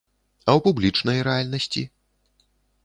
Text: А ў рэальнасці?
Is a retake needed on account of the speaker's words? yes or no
yes